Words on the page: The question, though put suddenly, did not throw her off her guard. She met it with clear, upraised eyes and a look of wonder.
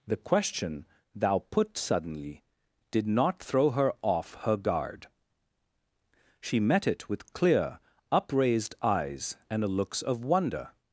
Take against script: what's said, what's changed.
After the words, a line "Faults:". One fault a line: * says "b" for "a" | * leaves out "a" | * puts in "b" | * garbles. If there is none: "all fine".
The question, thou put suddenly, did not throw her off her guard. She met it with clear, upraised eyes and a looks of wonder.
Faults:
* says "thou" for "though"
* says "looks" for "look"